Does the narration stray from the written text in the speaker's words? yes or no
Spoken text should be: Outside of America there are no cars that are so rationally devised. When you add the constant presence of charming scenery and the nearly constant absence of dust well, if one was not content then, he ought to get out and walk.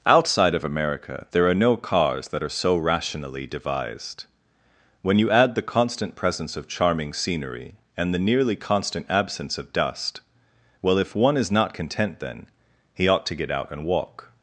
yes